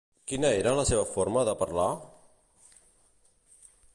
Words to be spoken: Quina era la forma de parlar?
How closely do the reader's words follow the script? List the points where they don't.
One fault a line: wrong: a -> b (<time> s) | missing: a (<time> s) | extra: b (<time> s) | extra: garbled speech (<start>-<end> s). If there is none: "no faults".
extra: seva (0.9 s)